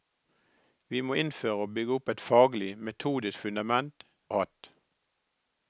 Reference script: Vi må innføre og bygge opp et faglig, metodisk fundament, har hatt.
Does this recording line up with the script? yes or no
yes